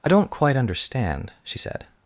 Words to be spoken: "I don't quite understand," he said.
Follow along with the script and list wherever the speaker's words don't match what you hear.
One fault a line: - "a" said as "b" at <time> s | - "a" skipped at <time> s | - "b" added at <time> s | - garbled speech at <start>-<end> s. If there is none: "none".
- "he" said as "she" at 1.4 s